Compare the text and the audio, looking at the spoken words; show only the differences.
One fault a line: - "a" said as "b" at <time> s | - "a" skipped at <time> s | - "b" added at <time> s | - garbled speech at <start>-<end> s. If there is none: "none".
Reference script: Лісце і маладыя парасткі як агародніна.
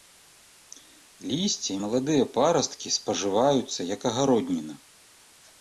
- "спажываюцца" added at 3.0 s